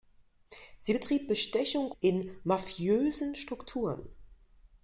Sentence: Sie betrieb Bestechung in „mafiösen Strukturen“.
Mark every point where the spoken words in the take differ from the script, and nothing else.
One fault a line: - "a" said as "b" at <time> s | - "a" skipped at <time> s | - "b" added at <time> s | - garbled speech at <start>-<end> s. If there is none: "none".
none